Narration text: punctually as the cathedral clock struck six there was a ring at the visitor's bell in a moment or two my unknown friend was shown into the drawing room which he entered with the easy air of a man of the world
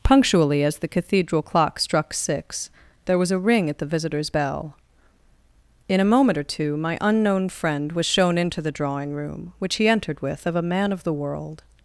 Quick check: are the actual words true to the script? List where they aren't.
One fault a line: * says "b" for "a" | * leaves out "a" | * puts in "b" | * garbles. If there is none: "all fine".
* leaves out "the easy air"